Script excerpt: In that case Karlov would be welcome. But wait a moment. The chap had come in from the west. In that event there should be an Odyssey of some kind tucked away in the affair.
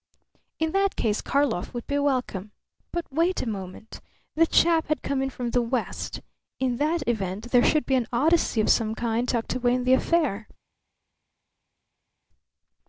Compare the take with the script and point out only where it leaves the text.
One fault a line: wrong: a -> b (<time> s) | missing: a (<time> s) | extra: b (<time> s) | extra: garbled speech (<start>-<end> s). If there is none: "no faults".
no faults